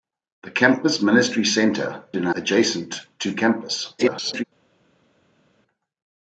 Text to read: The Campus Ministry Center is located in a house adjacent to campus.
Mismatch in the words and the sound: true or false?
true